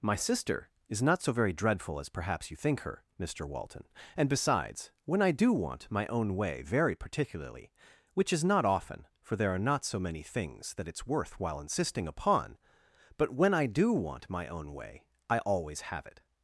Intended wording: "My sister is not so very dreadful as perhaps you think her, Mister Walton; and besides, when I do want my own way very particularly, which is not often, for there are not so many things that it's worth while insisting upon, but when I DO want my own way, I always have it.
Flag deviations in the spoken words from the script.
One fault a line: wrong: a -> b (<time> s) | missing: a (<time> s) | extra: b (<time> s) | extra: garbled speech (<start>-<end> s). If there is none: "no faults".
no faults